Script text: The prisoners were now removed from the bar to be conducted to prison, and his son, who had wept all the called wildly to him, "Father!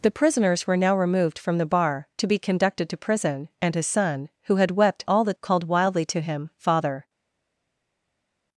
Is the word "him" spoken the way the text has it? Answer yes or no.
yes